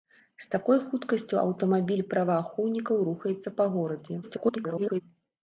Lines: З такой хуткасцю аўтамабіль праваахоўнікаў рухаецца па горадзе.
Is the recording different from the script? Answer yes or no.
yes